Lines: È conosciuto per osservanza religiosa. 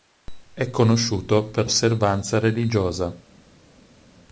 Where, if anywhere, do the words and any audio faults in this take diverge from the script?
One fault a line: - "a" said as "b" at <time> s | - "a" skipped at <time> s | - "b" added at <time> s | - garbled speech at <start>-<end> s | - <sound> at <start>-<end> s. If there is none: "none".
none